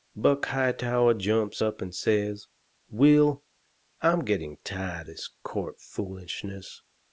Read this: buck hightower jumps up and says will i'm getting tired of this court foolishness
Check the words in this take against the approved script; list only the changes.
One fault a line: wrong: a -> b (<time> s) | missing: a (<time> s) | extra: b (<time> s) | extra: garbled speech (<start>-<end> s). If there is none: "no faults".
missing: of (5.1 s)